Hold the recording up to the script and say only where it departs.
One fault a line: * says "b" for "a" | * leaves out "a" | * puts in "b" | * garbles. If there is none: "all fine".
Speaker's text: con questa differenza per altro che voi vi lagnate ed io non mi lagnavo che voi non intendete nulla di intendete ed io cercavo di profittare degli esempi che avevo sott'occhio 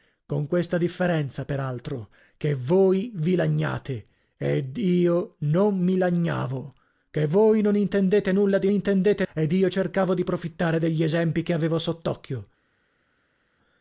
all fine